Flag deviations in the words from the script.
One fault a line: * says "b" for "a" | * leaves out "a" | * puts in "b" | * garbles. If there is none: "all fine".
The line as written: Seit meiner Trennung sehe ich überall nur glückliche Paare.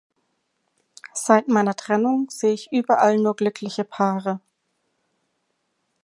all fine